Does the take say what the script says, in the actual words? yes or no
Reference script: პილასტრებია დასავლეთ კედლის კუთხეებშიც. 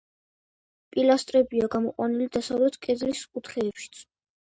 no